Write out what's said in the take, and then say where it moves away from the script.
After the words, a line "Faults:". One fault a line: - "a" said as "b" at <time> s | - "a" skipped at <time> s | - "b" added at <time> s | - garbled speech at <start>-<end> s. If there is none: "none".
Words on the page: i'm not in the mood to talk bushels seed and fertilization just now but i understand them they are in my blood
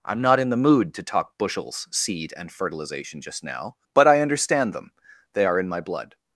i'm not in the mood to talk bushels seed and fertilization just now but i understand them they are in my blood
Faults:
none